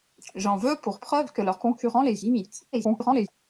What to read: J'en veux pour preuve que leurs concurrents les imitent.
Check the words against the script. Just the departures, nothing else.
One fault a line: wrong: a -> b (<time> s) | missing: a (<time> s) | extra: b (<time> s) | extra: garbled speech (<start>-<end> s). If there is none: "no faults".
extra: garbled speech (2.7-3.3 s)